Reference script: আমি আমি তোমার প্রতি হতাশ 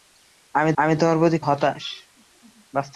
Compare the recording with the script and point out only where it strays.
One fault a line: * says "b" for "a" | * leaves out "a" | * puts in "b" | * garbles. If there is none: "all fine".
all fine